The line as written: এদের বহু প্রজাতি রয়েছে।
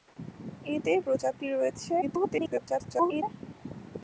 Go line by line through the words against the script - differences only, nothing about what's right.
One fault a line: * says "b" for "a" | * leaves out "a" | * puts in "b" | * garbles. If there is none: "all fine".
* leaves out "বহু"
* garbles